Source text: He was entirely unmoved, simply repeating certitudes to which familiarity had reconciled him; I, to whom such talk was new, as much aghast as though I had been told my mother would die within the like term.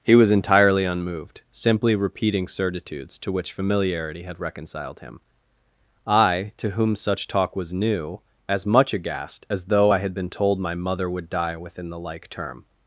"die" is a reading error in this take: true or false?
false